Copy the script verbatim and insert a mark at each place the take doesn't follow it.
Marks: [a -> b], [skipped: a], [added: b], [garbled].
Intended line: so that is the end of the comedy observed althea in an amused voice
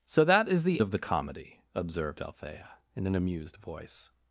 so that is the [skipped: end] of the comedy observed althea in an amused voice